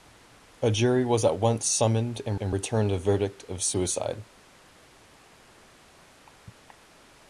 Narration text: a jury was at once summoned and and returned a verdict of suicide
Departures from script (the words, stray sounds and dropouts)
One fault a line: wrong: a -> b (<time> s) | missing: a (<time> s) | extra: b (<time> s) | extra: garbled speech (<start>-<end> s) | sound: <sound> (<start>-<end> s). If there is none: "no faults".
no faults